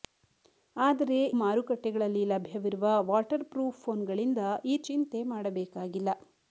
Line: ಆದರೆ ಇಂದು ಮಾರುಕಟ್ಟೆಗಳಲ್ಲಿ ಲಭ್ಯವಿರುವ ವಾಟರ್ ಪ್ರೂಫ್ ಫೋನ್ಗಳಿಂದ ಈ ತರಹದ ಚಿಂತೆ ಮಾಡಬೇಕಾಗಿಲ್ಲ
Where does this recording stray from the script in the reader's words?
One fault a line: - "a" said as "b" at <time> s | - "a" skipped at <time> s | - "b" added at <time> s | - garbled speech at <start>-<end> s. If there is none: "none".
- "ಇಂದು" skipped at 1.2 s
- "ತರಹದ" skipped at 4.8 s